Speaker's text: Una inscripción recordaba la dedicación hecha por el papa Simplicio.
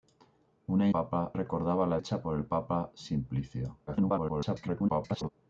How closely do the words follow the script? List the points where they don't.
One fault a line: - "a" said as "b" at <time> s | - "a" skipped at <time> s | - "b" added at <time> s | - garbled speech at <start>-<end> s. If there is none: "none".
- "inscripción" said as "papa" at 0.9 s
- "dedicación" skipped at 2.0 s
- garbled speech at 3.9-5.3 s